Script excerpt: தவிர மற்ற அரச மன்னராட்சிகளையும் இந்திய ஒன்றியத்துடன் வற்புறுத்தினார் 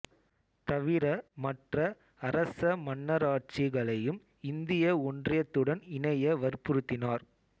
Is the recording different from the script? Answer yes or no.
yes